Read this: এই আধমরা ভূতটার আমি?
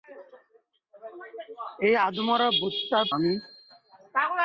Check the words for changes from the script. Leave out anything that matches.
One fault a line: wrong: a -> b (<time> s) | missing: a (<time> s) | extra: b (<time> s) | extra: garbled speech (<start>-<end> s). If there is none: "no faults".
no faults